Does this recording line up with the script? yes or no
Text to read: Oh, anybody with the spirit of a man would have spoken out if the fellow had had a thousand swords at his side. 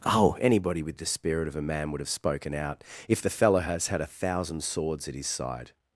no